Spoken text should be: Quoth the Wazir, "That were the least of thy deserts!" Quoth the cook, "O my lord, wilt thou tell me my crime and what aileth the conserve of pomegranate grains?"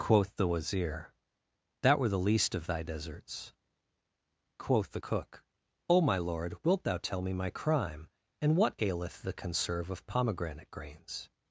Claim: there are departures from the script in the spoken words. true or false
false